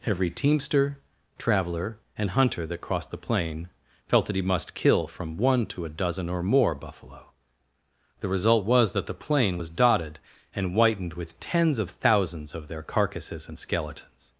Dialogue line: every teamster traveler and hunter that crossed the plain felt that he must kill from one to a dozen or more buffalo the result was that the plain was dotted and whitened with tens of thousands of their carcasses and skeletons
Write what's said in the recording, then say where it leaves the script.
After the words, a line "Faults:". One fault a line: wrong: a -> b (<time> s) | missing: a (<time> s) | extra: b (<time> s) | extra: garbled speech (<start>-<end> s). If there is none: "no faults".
every teamster traveler and hunter that crossed the plain felt that he must kill from one to a dozen or more buffalo the result was that the plain was dotted and whitened with tens of thousands of their carcasses and skeletons
Faults:
no faults